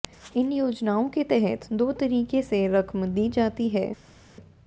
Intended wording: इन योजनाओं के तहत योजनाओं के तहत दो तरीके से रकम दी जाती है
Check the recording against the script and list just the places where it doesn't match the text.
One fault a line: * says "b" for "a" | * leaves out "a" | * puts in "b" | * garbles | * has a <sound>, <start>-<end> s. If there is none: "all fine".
* leaves out "योजनाओं के तहत"